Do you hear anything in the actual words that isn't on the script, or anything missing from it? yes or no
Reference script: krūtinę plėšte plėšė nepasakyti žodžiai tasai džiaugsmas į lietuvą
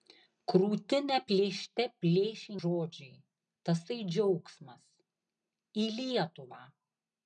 yes